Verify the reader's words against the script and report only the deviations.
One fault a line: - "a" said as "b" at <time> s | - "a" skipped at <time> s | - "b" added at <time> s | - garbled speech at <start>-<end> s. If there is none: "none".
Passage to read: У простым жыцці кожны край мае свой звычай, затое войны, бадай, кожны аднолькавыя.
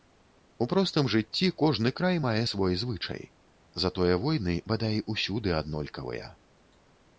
- "кожны" said as "усюды" at 5.2 s